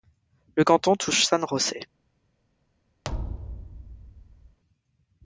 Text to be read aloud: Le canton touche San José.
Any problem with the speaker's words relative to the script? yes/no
no